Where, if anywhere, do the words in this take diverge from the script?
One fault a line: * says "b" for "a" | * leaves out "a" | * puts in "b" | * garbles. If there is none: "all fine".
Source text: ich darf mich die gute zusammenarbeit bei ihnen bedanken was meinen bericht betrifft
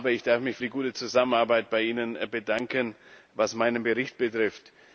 all fine